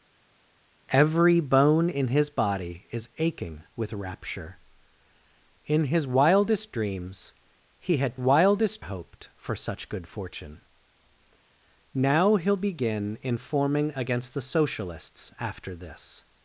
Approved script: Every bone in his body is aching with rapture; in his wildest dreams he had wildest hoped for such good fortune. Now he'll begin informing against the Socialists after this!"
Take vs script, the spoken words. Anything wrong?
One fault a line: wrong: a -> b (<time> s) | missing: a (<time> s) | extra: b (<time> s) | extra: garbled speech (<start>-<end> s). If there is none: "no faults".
no faults